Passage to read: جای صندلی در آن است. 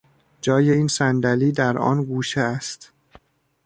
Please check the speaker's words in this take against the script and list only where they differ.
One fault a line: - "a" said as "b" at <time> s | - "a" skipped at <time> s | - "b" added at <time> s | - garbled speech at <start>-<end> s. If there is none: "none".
- "این" added at 0.7 s
- "گوشه" added at 2.0 s